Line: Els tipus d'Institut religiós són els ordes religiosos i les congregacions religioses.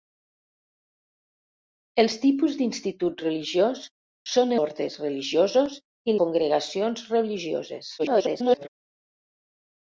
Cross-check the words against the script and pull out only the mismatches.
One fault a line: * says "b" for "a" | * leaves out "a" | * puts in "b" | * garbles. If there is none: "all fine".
* leaves out "els"
* leaves out "les"
* garbles